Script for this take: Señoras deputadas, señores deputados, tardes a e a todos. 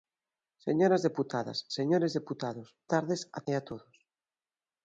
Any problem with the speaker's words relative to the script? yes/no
no